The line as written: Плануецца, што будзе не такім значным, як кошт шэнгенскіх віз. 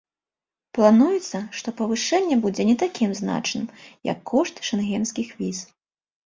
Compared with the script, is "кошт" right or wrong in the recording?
right